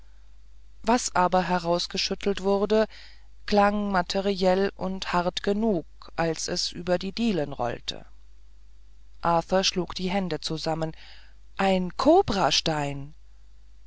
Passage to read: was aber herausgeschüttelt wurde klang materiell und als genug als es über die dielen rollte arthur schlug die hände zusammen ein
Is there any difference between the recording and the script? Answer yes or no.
yes